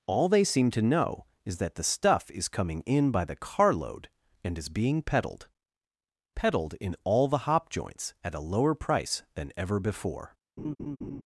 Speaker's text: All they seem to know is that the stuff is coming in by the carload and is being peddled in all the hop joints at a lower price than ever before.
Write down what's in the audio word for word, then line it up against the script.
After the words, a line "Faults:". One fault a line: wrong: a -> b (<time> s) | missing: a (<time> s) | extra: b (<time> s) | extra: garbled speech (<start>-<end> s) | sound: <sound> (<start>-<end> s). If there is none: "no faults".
All they seem to know is that the stuff is coming in by the carload and is being peddled peddled in all the hop joints at a lower price than ever before.
Faults:
extra: peddled (6.3 s)
sound: laugh (10.6-11.2 s)